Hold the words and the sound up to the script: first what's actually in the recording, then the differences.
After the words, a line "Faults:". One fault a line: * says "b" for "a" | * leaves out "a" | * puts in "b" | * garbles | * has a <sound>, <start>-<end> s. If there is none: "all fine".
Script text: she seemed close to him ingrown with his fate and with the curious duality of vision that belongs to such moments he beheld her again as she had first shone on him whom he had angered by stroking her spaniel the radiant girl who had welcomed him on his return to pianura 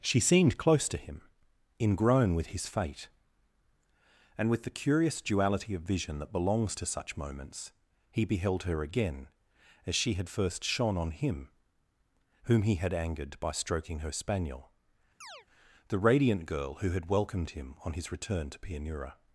she seemed close to him ingrown with his fate and with the curious duality of vision that belongs to such moments he beheld her again as she had first shone on him whom he had angered by stroking her spaniel the radiant girl who had welcomed him on his return to pianura
Faults:
* has a chirp, 15.2-15.5 s